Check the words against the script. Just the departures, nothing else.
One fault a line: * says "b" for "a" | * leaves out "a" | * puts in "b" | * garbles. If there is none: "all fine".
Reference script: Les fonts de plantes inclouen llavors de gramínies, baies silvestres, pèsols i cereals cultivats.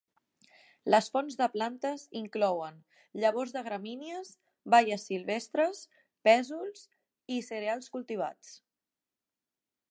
all fine